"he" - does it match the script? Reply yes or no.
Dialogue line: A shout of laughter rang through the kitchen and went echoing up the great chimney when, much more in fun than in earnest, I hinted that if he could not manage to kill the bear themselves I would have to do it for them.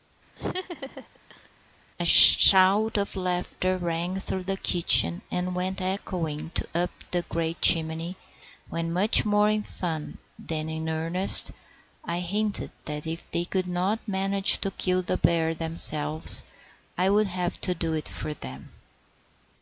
no